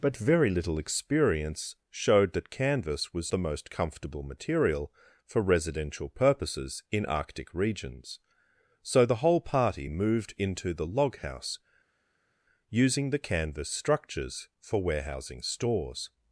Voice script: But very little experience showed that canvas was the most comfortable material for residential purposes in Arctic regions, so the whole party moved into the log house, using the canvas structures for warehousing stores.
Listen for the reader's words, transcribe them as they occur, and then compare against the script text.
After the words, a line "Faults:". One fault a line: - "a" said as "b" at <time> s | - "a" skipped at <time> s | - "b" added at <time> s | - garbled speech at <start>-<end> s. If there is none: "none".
But very little experience showed that canvas was the most comfortable material for residential purposes in Arctic regions, so the whole party moved into the log house, using the canvas structures for warehousing stores.
Faults:
none